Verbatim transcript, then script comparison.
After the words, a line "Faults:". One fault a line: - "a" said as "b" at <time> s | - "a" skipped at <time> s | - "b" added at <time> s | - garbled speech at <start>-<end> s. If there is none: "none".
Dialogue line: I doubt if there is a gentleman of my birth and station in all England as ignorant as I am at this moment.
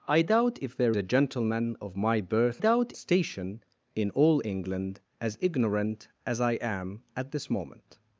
I doubt if there a gentleman of my birth doubt station in all England as ignorant as I am at this moment.
Faults:
- "is" skipped at 0.9 s
- "and" said as "doubt" at 2.6 s